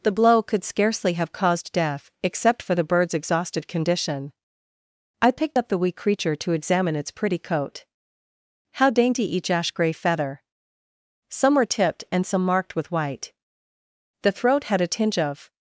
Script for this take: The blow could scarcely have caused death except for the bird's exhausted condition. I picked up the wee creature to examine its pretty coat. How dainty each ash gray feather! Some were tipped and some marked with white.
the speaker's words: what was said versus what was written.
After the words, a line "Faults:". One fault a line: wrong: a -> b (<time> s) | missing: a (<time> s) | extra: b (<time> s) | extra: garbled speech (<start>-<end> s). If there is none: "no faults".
The blow could scarcely have caused death except for the bird's exhausted condition. I picked up the wee creature to examine its pretty coat. How dainty each ash gray feather! Some were tipped and some marked with white. The throat had a tinge of
Faults:
extra: The throat had a tinge of (14.2 s)